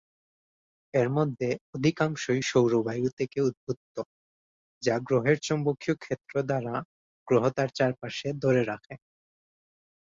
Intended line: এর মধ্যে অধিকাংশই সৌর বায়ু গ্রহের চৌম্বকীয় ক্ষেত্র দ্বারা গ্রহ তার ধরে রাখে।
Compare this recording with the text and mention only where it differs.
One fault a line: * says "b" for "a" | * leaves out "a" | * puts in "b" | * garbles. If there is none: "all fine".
* puts in "থেকে উদ্ভূত যা"
* puts in "চারপাশে"